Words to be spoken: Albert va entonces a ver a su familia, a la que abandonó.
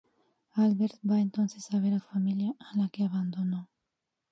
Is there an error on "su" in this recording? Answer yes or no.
yes